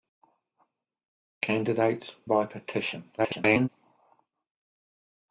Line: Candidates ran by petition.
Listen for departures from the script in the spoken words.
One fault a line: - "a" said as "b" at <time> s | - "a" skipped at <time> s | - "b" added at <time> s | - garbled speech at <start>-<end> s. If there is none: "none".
- "ran" skipped at 2.1 s
- garbled speech at 3.2-3.7 s